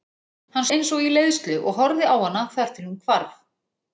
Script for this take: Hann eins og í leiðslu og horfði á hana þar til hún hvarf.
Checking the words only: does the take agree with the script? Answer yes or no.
yes